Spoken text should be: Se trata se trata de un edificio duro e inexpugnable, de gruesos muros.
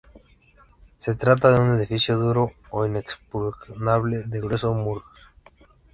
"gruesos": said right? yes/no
yes